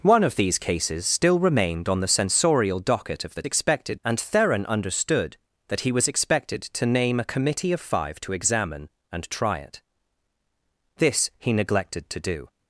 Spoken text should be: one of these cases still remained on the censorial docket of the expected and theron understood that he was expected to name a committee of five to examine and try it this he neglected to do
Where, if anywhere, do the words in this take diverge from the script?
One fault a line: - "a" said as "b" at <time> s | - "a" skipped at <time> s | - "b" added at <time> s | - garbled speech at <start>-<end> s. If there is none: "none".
none